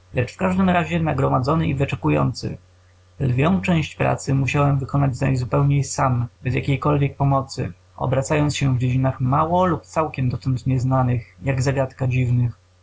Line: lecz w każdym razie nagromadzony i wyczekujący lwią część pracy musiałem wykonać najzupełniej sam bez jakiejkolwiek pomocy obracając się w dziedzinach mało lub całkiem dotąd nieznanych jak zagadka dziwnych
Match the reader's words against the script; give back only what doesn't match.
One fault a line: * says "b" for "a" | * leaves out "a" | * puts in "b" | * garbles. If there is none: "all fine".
all fine